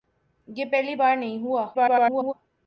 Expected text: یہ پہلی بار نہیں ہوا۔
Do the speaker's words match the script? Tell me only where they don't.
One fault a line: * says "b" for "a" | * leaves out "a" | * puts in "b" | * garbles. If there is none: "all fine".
* garbles